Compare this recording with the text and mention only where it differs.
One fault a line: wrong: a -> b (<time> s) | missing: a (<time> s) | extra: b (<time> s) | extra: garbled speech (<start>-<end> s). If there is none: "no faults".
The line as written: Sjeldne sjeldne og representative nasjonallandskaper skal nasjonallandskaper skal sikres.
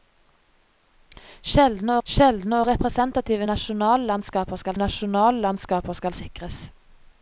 no faults